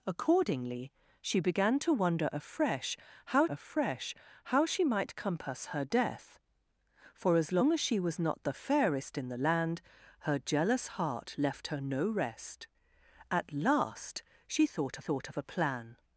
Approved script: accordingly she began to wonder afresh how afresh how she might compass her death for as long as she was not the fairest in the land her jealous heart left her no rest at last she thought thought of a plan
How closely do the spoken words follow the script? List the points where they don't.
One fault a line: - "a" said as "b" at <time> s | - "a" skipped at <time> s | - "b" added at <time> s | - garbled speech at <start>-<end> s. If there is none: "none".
none